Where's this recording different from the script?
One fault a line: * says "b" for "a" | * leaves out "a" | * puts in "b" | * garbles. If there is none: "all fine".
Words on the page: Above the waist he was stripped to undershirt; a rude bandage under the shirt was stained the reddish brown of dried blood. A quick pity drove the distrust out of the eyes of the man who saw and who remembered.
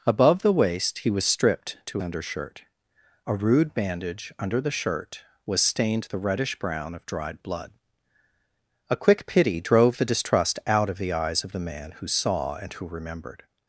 all fine